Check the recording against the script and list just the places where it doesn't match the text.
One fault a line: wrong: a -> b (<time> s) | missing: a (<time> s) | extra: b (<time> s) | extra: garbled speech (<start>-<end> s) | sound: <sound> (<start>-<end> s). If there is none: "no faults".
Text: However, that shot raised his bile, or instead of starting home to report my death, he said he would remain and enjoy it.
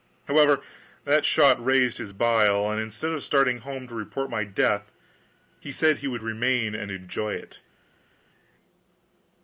wrong: or -> and (2.7 s)